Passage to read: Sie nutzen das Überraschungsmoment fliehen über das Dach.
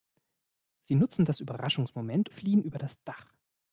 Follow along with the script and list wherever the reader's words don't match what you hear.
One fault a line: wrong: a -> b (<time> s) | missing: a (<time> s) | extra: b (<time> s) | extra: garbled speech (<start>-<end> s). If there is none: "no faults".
no faults